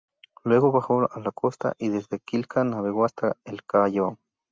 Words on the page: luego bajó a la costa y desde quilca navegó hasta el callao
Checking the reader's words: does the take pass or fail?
pass